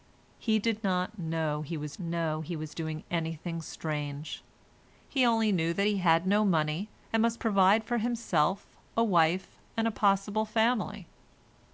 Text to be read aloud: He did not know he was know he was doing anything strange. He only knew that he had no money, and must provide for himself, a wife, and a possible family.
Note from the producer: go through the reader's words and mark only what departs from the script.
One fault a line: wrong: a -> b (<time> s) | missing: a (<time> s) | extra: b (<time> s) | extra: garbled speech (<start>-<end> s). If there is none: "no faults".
no faults